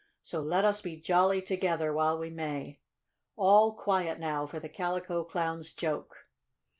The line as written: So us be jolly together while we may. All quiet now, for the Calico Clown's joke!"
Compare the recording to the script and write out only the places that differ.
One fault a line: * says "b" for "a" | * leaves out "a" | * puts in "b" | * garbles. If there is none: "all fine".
* puts in "let"